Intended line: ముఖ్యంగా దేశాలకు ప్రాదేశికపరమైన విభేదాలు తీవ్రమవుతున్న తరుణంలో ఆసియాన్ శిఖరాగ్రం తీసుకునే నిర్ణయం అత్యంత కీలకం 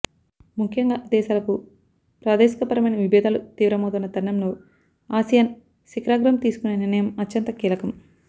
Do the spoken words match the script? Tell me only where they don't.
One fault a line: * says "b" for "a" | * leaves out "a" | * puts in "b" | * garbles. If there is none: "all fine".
all fine